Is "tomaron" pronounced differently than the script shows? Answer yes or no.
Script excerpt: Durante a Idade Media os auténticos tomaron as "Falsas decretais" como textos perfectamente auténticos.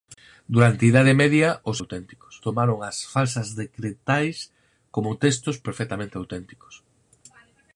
no